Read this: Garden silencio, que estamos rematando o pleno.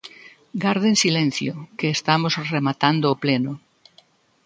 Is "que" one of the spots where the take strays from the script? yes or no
no